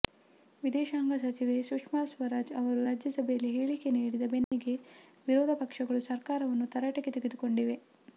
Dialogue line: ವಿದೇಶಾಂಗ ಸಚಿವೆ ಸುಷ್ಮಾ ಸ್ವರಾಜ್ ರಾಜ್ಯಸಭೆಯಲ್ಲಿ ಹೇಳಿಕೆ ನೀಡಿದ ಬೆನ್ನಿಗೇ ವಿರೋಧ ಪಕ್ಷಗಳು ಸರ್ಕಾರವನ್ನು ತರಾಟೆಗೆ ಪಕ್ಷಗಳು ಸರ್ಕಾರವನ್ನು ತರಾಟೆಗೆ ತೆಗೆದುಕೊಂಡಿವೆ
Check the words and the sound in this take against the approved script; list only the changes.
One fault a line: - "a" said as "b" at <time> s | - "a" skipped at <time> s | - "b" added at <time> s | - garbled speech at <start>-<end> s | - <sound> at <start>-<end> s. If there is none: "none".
- "ಅವರು" added at 2.6 s
- dropout at 4.4-4.5 s
- "ಪಕ್ಷಗಳು ಸರ್ಕಾರವನ್ನು ತರಾಟೆಗೆ" skipped at 7.1 s